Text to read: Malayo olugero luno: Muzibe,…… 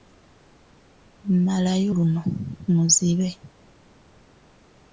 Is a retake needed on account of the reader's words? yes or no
yes